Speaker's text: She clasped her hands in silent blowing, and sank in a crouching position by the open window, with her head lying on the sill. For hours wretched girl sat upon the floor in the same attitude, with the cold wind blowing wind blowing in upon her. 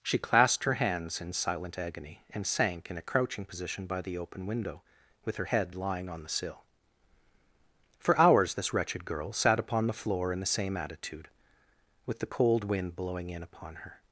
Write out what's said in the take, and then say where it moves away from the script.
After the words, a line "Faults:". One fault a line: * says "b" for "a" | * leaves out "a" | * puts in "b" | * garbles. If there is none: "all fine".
She clasped her hands in silent agony, and sank in a crouching position by the open window, with her head lying on the sill. For hours this wretched girl sat upon the floor in the same attitude, with the cold wind blowing in upon her.
Faults:
* says "agony" for "blowing"
* puts in "this"
* leaves out "wind blowing"